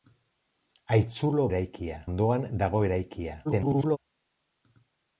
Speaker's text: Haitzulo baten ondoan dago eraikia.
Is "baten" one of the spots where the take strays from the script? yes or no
yes